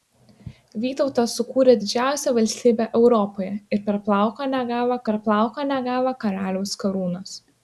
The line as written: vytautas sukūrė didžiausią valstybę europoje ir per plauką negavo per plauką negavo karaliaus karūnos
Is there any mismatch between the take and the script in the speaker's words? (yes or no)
no